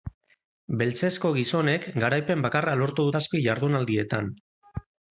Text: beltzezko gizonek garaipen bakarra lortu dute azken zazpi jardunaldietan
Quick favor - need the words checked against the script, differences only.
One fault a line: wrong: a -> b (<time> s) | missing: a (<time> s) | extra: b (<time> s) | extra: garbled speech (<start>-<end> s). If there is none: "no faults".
missing: dute azken (3.1 s)